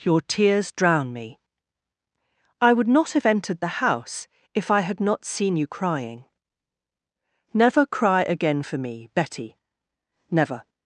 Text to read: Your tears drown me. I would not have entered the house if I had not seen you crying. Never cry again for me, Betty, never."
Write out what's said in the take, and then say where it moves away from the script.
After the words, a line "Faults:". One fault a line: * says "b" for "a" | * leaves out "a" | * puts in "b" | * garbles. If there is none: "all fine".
Your tears drown me. I would not have entered the house if I had not seen you crying. Never cry again for me, Betty, never."
Faults:
all fine